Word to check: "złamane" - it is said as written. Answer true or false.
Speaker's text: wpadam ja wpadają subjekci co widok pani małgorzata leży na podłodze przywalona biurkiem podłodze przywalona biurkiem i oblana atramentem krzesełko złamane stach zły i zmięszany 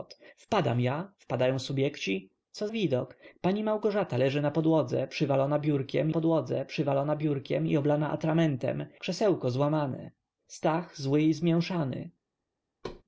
true